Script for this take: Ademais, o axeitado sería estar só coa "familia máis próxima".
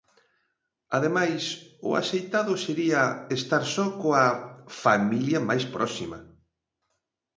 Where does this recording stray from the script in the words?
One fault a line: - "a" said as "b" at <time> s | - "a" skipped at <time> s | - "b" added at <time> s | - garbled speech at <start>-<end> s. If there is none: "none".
none